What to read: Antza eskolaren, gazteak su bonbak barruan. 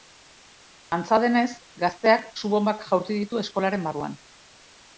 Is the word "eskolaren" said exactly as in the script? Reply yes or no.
no